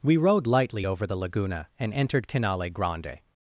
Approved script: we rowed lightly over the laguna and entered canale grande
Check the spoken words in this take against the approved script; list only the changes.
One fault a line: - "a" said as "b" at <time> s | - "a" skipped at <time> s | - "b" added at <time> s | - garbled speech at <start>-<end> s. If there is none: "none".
none